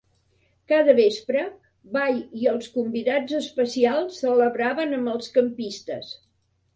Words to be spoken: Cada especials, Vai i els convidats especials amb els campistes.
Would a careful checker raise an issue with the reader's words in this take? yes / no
yes